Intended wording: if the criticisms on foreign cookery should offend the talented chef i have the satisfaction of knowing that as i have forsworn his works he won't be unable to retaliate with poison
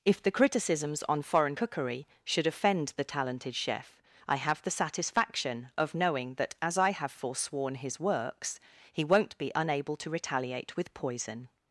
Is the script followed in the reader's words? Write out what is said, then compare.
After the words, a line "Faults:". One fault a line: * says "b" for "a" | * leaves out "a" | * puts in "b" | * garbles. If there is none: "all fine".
if the criticisms on foreign cookery should offend the talented chef i have the satisfaction of knowing that as i have forsworn his works he won't be unable to retaliate with poison
Faults:
all fine